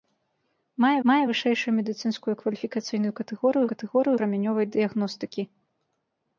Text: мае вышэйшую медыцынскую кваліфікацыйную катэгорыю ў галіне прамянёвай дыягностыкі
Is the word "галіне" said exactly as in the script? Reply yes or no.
no